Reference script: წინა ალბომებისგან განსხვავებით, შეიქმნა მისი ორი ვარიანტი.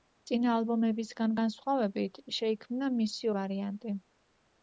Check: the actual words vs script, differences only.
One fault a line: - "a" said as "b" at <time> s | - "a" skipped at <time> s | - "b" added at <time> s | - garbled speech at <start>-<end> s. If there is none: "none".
- "ორი" skipped at 3.3 s